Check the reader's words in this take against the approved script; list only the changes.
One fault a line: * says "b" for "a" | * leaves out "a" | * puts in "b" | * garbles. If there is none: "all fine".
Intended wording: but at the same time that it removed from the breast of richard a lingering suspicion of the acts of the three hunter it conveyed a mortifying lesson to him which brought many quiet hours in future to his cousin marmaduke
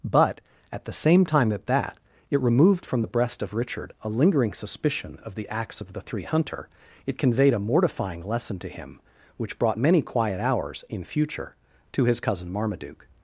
* puts in "that"